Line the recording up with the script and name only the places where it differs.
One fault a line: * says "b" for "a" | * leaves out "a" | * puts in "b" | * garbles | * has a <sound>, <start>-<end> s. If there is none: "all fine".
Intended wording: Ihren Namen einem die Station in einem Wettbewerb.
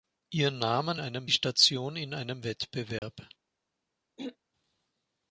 * has a dropout, 3.0-3.0 s
* has a throat clearing, 4.2-4.4 s